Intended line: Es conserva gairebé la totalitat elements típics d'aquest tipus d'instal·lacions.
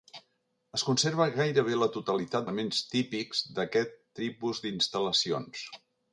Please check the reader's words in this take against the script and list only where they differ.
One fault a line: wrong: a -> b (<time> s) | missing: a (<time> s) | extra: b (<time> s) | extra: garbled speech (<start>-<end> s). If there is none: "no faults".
no faults